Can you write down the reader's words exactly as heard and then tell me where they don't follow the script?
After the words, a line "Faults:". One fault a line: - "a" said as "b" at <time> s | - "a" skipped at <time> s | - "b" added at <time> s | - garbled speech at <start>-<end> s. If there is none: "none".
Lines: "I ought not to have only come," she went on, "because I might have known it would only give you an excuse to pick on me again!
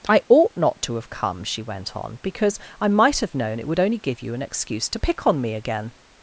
"I ought not to have come," she went on, "because I might have known it would only give you an excuse to pick on me again!
Faults:
- "only" skipped at 1.1 s